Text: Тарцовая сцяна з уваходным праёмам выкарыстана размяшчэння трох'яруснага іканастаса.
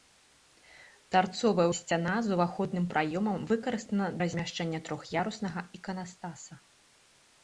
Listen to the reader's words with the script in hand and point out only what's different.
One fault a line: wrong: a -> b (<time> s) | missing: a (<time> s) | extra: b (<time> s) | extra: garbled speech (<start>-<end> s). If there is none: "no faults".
no faults